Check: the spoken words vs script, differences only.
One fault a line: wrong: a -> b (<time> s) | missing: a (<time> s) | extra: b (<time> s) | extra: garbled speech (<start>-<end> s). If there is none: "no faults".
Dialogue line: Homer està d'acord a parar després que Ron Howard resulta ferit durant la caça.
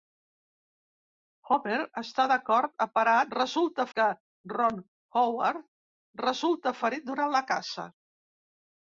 wrong: després -> resulta (3.4 s)